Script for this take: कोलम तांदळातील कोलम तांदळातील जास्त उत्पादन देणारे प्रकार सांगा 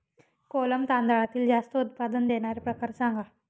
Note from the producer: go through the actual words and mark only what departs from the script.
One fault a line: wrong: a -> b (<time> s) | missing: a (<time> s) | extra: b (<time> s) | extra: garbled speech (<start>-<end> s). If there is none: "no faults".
missing: कोलम तांदळातील (1.5 s)